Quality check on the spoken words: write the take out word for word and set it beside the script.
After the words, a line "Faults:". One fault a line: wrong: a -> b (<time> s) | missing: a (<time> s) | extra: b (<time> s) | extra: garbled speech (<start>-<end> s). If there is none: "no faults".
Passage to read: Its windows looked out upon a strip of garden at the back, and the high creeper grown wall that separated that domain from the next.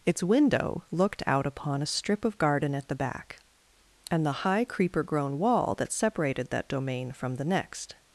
Its window looked out upon a strip of garden at the back, and the high creeper grown wall that separated that domain from the next.
Faults:
wrong: windows -> window (0.2 s)